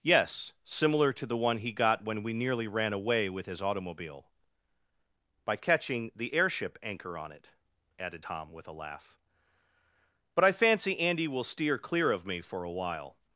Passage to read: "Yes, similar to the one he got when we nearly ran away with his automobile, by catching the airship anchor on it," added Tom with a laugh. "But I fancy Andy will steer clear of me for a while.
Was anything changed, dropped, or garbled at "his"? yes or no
no